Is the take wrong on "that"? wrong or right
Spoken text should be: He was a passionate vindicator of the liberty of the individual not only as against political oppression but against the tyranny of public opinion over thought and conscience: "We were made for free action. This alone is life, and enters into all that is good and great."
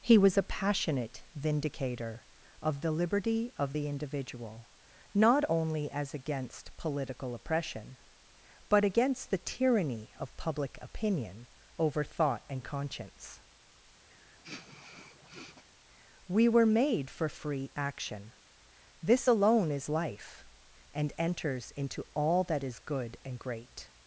right